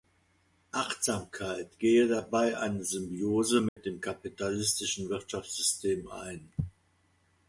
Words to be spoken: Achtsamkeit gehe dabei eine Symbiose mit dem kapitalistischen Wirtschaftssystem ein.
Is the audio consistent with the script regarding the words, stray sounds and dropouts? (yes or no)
no